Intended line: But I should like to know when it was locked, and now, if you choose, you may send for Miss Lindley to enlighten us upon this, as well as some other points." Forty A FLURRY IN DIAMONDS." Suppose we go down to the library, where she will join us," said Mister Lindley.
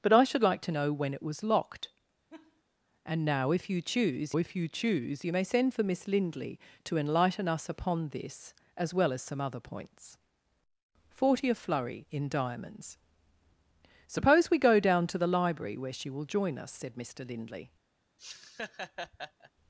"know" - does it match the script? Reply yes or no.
yes